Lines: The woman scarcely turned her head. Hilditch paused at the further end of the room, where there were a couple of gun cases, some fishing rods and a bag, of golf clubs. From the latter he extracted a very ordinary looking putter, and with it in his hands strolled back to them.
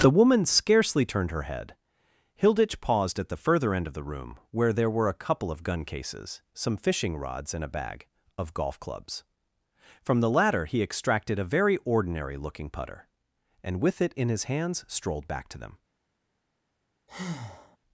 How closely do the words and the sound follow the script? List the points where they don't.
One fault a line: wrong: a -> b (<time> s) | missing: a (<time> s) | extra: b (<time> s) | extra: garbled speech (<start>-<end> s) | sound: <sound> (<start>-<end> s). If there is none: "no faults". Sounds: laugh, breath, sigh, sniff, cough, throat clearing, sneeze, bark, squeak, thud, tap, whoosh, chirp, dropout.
sound: breath (17.1-17.8 s)